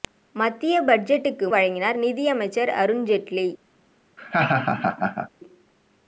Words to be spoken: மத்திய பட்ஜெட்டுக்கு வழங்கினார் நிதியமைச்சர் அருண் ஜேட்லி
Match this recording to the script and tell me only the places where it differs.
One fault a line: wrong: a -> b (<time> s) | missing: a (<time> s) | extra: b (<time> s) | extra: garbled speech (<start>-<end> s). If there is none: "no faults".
no faults